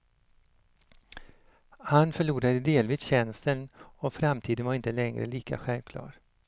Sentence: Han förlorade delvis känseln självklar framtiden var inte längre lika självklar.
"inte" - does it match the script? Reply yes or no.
yes